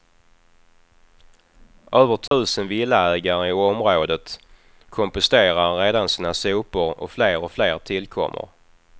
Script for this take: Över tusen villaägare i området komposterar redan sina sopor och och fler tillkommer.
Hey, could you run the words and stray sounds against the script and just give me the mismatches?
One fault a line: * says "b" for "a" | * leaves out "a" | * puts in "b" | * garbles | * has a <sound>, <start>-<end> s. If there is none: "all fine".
* has a dropout, 2.3-2.3 s
* puts in "fler"